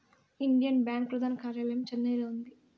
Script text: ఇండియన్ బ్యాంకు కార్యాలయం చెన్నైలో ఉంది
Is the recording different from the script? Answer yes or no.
yes